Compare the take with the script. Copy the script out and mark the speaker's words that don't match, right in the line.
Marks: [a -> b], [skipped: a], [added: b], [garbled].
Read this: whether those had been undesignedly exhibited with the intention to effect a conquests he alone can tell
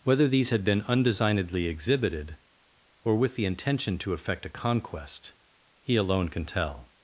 whether [those -> these] had been undesignedly exhibited [added: or] with the intention to effect a [conquests -> conquest] he alone can tell